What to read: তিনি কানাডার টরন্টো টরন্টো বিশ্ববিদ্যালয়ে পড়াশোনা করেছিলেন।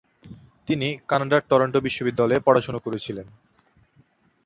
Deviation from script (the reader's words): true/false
true